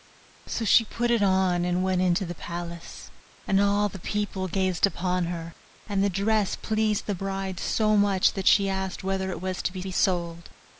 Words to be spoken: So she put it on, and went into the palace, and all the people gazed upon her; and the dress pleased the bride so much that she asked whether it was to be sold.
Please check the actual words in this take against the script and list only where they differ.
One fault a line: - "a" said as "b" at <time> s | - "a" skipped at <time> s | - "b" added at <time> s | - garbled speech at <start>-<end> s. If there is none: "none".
- "be" added at 9.8 s